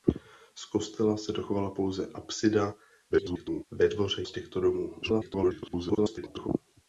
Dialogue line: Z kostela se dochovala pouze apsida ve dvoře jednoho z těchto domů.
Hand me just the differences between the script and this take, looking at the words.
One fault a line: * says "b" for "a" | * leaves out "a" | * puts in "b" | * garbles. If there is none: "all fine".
* garbles
* leaves out "jednoho"
* garbles